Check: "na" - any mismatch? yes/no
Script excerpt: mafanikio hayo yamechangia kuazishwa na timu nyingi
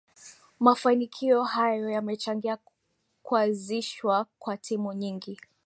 yes